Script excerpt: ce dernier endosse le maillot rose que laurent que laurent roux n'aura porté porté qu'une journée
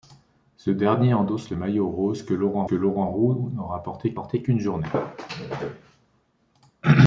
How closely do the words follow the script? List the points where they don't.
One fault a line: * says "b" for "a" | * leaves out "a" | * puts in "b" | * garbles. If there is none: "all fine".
all fine